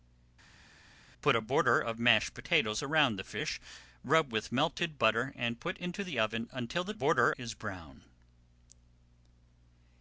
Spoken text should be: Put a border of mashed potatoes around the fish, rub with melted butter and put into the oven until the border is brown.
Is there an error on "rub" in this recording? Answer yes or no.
no